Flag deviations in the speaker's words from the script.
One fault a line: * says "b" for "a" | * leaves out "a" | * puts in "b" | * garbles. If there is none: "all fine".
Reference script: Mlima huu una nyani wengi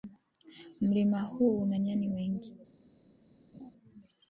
all fine